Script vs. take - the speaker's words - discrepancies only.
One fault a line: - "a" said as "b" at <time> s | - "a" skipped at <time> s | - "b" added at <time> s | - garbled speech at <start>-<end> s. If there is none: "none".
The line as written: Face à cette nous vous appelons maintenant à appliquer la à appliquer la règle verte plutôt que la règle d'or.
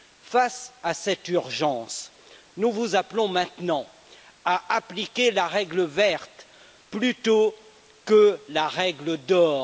- "urgence" added at 1.3 s
- "à appliquer la" skipped at 5.5 s